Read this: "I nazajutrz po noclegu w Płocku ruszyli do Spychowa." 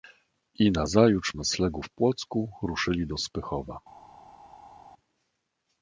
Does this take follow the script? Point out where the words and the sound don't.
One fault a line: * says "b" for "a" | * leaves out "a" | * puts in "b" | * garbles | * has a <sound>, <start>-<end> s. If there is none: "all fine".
* leaves out "po"